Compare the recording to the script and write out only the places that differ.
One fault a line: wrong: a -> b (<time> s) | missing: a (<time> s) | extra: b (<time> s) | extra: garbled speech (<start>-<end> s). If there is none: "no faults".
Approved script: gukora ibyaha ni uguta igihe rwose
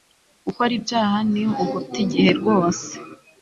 no faults